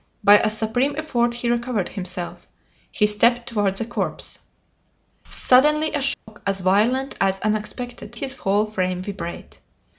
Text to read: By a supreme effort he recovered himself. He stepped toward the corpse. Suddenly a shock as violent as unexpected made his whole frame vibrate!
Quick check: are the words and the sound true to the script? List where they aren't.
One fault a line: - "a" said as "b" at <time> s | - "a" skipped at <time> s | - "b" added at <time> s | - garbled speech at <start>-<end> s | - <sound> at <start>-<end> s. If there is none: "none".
- dropout at 6.1-6.3 s
- "made" skipped at 8.2 s